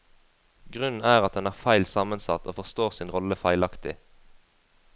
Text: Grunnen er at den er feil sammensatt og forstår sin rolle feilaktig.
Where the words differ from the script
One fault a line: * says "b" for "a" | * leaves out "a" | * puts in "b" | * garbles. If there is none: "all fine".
all fine